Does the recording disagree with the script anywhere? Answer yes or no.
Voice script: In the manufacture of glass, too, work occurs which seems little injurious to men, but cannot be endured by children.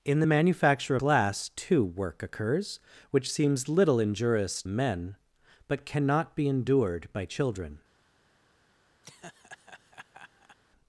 yes